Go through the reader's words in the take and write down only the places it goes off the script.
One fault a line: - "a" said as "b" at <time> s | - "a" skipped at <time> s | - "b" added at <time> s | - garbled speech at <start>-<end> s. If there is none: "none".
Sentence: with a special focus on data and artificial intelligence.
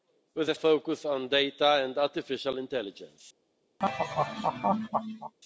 - "special" skipped at 0.6 s